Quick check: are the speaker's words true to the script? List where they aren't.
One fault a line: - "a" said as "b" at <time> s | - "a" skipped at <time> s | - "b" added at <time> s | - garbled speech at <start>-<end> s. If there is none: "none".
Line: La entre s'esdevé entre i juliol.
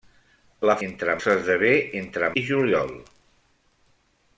none